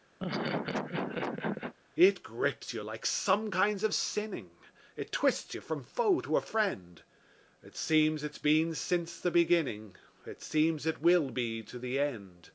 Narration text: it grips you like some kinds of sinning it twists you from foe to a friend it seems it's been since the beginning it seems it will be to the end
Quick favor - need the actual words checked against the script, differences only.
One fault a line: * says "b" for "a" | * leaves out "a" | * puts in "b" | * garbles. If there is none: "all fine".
all fine